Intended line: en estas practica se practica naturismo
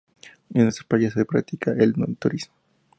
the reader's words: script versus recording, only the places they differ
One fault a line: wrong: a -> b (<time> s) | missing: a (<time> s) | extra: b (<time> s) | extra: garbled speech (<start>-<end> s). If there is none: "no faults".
wrong: practica -> playas (0.8 s)
extra: el (1.7 s)